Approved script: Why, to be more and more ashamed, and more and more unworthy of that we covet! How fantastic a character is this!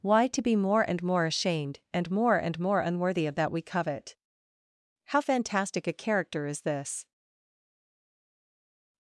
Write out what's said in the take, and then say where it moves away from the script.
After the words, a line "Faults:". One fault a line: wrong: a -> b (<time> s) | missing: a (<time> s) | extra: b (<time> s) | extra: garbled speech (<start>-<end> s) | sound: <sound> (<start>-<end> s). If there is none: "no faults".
Why, to be more and more ashamed, and more and more unworthy of that we covet! How fantastic a character is this!
Faults:
no faults